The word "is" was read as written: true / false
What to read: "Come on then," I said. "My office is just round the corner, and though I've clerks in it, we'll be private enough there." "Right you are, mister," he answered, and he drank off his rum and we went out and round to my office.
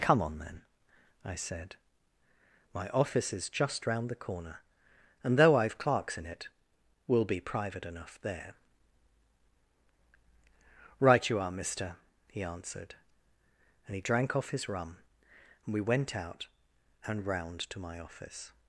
true